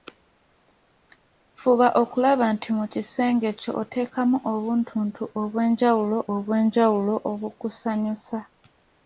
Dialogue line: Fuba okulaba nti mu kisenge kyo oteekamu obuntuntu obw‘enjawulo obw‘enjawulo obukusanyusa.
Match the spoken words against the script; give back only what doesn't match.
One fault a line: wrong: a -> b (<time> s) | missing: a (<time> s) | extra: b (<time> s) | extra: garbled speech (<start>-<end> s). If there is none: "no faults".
no faults